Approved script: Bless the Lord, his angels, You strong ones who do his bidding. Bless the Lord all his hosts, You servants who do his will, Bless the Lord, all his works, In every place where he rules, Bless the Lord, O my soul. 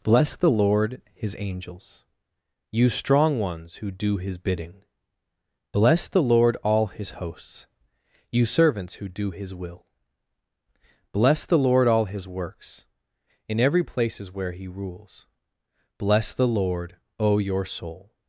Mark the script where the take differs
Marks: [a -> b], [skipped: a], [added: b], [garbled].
Bless the Lord, his angels, You strong ones who do his bidding. Bless the Lord all his hosts, You servants who do his will, Bless the Lord, all his works, In every [place -> places] where he rules, Bless the Lord, O [my -> your] soul.